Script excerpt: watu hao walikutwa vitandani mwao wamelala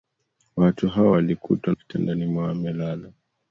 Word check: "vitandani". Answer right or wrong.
right